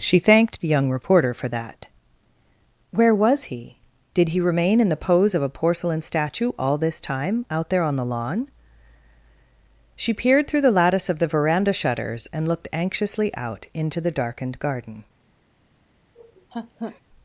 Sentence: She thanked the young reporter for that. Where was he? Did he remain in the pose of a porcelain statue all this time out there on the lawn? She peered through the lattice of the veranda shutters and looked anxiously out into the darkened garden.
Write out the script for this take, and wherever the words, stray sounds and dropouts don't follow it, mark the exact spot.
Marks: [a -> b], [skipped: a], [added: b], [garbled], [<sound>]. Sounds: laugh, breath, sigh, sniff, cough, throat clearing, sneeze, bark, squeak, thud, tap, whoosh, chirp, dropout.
She thanked the young reporter for that. Where was he? Did he remain in the pose of a porcelain statue all this time out there on the lawn? She peered through the lattice of the veranda shutters and looked anxiously out into the darkened garden. [laugh]